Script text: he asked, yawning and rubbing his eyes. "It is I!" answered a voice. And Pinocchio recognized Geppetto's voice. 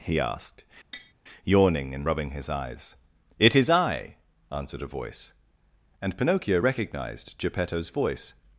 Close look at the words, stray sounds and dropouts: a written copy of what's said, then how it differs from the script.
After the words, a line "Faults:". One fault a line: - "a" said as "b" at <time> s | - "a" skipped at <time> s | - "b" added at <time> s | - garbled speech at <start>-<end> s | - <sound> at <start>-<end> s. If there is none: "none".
he asked, yawning and rubbing his eyes. "It is I!" answered a voice. And Pinocchio recognized Geppetto's voice.
Faults:
- tap at 0.9-1.1 s